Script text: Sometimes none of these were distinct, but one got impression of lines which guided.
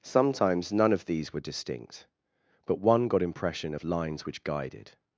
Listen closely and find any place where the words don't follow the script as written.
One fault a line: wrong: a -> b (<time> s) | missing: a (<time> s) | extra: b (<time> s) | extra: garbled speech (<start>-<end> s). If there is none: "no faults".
no faults